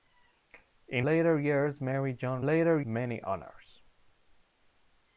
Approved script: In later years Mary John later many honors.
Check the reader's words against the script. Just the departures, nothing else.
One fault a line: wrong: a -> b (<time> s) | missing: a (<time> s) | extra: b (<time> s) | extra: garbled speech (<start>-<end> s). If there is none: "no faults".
no faults